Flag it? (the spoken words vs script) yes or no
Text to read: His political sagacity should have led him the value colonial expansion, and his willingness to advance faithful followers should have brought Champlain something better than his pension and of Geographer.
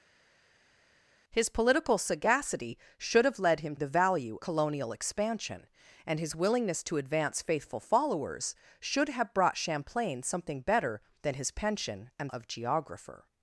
no